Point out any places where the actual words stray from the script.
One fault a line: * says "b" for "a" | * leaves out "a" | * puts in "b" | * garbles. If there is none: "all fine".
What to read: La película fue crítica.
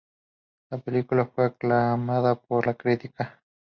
* puts in "aclamada por la"